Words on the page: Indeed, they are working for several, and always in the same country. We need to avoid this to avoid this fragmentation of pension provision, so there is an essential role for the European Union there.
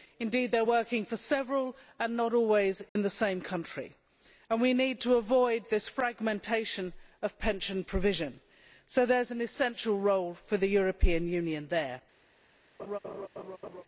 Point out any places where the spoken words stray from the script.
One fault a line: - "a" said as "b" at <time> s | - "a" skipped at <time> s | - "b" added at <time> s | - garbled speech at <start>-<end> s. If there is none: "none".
- "not" added at 2.2 s
- "And" added at 4.5 s
- "to avoid this" skipped at 5.9 s